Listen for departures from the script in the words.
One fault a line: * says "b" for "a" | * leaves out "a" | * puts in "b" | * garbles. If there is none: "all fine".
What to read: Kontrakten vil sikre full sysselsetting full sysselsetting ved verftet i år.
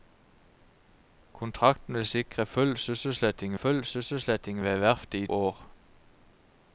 all fine